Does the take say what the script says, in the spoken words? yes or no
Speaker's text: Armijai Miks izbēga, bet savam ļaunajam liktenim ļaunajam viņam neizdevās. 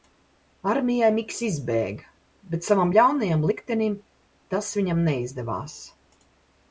no